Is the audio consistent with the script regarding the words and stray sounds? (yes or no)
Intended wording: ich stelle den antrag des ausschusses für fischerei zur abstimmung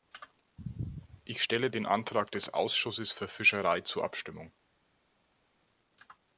yes